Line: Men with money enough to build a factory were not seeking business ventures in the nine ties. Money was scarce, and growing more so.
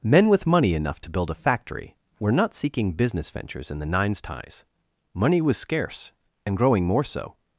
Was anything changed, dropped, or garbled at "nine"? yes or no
yes